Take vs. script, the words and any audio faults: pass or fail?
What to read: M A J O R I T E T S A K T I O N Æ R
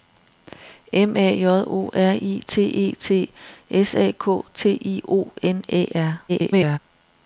fail